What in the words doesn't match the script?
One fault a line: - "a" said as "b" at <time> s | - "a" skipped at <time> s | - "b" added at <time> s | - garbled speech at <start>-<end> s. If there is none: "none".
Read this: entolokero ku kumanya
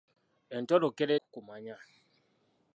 none